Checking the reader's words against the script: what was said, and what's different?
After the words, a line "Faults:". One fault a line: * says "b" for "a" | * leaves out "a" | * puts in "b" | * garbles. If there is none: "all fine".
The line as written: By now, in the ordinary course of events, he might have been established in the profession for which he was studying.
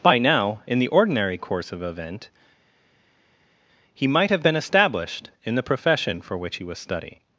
By now, in the ordinary course of event, he might have been established in the profession for which he was studying.
Faults:
* says "event" for "events"